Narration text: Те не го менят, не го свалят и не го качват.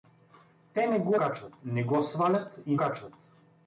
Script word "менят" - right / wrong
wrong